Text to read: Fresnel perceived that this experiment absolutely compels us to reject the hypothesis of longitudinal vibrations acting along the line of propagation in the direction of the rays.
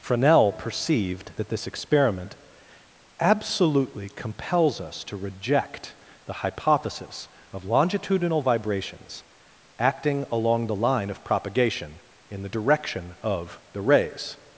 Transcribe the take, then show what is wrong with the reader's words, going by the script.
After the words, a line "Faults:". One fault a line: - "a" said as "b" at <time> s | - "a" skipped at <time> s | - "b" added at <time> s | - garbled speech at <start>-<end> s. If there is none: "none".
Fresnel perceived that this experiment absolutely compels us to reject the hypothesis of longitudinal vibrations acting along the line of propagation in the direction of the rays.
Faults:
none